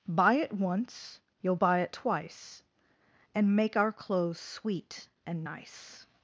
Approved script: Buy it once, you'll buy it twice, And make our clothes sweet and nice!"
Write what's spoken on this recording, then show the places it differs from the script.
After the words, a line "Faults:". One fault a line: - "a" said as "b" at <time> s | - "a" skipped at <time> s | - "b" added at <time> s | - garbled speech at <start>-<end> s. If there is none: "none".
Buy it once, you'll buy it twice, And make our clothes sweet and nice!"
Faults:
none